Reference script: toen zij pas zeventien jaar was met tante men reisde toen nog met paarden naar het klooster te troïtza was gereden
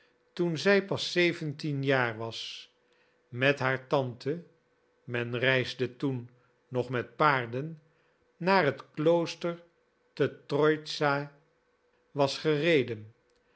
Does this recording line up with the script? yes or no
no